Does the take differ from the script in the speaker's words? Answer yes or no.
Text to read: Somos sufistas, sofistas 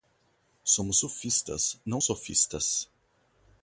yes